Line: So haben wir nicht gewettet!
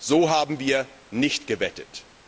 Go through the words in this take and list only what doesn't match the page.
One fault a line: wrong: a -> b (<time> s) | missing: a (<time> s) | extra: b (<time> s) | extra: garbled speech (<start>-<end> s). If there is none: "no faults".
no faults